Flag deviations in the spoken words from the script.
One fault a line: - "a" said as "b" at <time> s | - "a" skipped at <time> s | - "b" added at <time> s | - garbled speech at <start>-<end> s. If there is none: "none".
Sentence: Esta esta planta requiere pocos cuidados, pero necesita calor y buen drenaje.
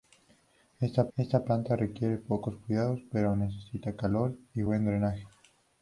none